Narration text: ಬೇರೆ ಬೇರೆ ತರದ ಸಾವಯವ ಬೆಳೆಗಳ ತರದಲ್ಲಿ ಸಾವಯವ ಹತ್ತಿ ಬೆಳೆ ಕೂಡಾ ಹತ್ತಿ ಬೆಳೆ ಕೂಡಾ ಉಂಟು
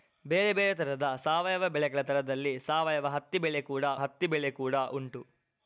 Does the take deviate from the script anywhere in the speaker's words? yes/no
no